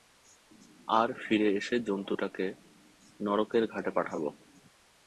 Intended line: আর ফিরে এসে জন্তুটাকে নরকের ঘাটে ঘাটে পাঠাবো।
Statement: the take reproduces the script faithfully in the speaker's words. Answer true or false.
false